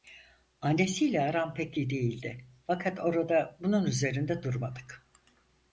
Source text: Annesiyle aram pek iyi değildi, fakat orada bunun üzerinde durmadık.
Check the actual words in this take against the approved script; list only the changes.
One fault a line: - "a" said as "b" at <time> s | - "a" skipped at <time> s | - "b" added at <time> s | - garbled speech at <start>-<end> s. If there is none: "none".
none